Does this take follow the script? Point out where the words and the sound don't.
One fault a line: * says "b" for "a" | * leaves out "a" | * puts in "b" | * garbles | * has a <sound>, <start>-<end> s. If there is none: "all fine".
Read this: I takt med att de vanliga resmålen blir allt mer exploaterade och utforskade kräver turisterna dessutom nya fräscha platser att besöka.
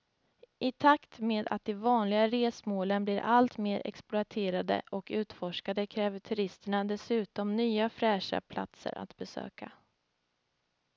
all fine